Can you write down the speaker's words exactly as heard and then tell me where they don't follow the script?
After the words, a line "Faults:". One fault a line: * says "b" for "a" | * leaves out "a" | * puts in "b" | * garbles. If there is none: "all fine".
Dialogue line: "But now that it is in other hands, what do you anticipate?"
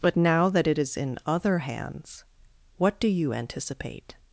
"But now that it is in other hands, what do you anticipate?"
Faults:
all fine